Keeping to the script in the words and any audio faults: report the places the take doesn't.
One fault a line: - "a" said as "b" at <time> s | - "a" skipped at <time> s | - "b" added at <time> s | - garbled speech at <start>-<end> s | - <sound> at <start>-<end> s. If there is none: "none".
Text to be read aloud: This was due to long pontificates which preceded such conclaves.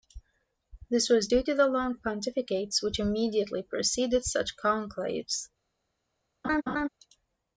- "the" added at 1.5 s
- "immediately" added at 3.0 s
- laugh at 6.4-6.9 s